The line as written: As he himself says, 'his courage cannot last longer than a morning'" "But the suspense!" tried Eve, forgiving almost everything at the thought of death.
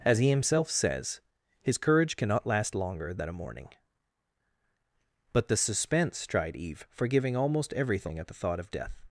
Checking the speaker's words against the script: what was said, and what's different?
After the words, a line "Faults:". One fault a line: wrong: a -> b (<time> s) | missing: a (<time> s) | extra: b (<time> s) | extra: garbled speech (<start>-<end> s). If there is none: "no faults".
As he himself says, 'his courage cannot last longer than a morning'" "But the suspense!" tried Eve, forgiving almost everything at the thought of death.
Faults:
no faults